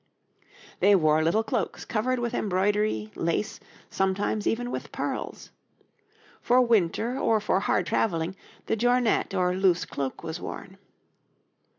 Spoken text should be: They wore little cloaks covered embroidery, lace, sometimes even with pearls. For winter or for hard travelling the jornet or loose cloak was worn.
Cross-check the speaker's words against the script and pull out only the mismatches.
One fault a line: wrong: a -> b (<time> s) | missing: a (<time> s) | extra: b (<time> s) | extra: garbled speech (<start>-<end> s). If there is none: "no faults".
extra: with (2.2 s)